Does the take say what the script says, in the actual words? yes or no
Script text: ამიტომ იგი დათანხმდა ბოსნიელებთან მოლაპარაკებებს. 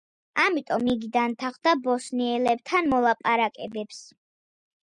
yes